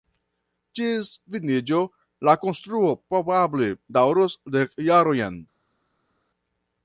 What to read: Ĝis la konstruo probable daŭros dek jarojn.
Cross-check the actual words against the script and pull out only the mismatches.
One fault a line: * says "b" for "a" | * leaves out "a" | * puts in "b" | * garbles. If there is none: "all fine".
* puts in "finiĝo"